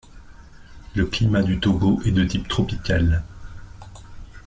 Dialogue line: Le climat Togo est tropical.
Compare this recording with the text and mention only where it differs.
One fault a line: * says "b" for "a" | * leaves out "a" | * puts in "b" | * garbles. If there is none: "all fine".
* puts in "du"
* puts in "de type"